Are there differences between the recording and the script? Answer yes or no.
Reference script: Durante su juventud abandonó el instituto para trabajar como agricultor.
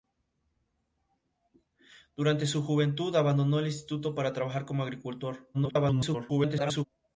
yes